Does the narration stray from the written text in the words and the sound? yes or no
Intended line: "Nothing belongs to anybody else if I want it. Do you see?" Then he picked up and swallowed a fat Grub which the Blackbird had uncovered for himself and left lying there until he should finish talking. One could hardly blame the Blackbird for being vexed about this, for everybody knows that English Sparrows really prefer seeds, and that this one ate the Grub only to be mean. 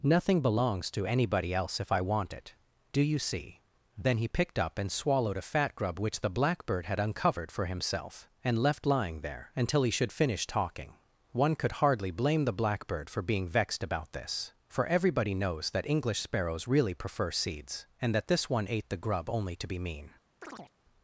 yes